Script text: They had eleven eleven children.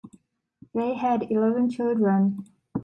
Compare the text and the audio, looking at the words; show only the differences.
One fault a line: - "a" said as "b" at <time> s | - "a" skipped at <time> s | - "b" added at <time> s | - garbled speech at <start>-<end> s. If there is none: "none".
- "eleven" skipped at 1.7 s